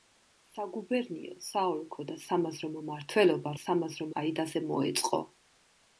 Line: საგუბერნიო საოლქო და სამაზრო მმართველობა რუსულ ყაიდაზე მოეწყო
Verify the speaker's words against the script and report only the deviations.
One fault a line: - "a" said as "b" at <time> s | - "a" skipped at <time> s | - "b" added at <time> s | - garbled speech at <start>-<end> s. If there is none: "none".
- "რუსულ" said as "სამაზრო" at 3.6 s